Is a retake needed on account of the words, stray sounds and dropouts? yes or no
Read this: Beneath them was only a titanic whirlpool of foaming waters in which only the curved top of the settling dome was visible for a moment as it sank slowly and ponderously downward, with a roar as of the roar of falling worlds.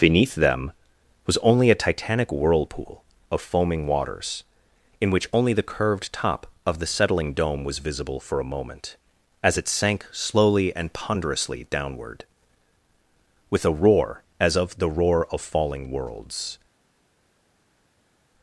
no